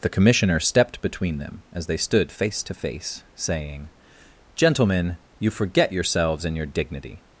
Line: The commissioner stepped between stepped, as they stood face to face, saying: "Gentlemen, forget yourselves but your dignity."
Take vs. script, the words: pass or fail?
fail